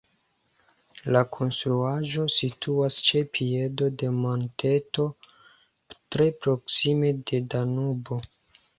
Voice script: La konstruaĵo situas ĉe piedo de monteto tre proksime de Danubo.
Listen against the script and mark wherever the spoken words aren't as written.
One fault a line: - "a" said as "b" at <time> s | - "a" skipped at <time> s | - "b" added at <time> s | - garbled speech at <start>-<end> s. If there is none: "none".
none